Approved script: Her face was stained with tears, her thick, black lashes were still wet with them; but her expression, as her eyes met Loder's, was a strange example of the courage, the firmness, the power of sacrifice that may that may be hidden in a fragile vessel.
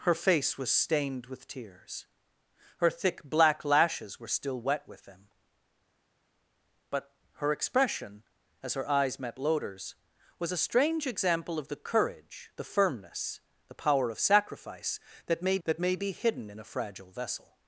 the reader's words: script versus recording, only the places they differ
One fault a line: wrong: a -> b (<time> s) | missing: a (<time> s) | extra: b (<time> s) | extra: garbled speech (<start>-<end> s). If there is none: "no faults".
no faults